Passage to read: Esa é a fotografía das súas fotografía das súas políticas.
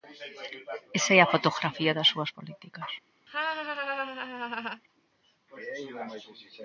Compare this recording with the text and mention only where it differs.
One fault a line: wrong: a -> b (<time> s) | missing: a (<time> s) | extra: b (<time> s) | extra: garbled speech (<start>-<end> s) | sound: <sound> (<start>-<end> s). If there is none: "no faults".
missing: fotografía das súas (2.3 s)
sound: laugh (3.3-4.8 s)